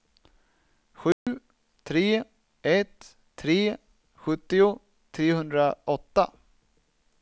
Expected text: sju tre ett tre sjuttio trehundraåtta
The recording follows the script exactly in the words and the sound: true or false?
false